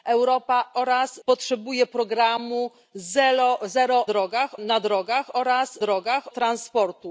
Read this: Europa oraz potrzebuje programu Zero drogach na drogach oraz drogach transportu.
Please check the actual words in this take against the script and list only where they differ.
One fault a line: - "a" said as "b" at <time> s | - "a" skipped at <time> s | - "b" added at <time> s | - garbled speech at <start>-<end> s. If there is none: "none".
none